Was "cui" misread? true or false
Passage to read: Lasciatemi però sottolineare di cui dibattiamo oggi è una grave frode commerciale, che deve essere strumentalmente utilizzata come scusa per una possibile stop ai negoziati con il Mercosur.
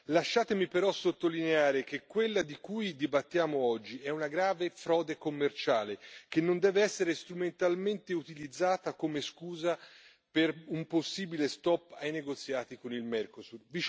false